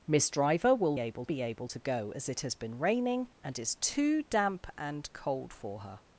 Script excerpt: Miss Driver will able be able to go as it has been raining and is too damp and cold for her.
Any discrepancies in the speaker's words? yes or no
no